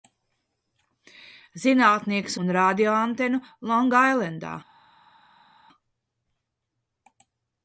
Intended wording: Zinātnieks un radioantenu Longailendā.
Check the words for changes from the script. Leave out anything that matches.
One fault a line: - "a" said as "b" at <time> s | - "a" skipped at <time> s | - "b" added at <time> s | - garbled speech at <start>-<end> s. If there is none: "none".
none